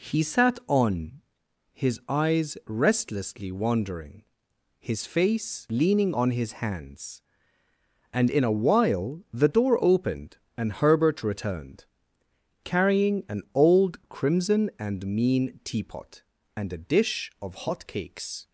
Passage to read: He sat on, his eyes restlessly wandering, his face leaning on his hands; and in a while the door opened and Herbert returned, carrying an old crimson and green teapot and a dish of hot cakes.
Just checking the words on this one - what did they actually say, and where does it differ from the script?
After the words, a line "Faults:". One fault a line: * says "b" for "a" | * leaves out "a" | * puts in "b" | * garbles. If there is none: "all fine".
He sat on, his eyes restlessly wandering, his face leaning on his hands; and in a while the door opened and Herbert returned, carrying an old crimson and mean teapot and a dish of hot cakes.
Faults:
* says "mean" for "green"